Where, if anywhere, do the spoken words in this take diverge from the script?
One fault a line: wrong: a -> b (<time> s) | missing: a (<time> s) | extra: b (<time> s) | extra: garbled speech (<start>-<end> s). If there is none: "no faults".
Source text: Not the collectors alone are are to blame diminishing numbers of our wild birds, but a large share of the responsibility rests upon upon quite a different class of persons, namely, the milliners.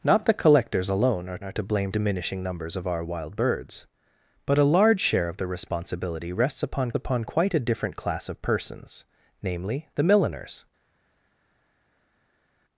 no faults